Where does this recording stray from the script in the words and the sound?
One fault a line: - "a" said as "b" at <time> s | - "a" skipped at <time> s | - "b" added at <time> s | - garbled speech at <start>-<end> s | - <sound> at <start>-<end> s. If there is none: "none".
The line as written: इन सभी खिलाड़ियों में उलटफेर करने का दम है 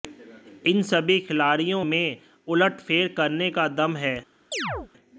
- chirp at 4.5-4.9 s